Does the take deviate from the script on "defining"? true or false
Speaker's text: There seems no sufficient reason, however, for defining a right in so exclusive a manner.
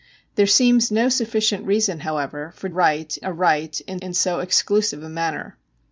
true